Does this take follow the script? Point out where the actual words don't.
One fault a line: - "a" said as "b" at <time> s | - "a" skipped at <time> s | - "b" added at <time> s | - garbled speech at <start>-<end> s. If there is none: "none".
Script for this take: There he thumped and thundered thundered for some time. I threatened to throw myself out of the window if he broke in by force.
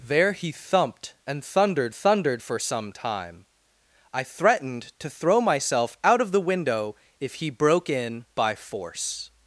none